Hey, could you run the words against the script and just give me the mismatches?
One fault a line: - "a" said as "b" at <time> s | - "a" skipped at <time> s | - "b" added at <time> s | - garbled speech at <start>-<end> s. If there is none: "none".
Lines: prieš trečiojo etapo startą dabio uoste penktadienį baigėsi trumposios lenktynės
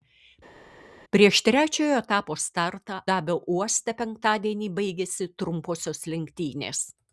none